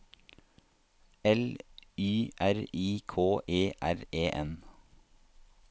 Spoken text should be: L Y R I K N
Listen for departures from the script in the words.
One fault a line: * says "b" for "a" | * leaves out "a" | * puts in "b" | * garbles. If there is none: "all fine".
* puts in "E R E"